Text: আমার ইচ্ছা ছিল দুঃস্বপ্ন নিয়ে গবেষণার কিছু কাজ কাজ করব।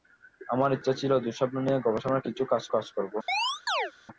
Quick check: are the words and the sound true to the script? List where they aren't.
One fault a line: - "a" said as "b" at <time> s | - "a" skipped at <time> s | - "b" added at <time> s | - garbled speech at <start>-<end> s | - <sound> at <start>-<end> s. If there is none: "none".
- chirp at 3.3-3.9 s